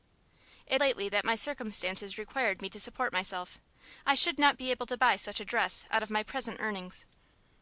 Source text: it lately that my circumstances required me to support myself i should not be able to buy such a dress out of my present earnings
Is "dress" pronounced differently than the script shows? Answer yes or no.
no